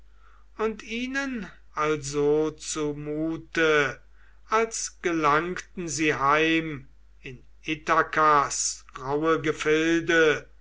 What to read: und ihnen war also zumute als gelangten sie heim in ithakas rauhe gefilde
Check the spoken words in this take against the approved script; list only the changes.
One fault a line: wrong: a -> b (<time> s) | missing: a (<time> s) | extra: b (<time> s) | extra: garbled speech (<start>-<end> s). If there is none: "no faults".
missing: war (1.4 s)